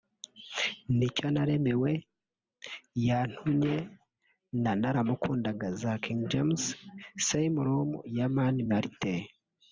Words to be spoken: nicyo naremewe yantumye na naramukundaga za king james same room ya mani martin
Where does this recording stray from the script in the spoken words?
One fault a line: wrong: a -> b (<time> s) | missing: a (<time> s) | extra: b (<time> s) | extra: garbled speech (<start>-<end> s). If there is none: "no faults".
no faults